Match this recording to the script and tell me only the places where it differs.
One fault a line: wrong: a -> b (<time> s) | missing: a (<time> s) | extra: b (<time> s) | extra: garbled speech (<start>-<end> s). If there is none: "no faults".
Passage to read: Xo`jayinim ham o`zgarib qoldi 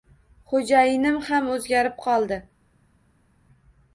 no faults